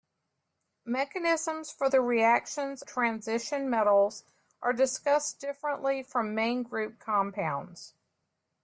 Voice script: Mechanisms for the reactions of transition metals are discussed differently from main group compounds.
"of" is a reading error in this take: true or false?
true